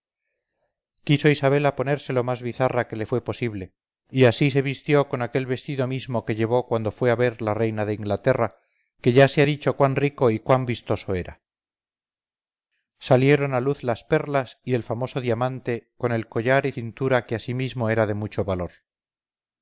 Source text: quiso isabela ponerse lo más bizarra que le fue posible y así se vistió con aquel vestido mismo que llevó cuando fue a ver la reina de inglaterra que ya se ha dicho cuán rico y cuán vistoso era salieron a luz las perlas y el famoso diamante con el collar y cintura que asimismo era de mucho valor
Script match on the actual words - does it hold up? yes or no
yes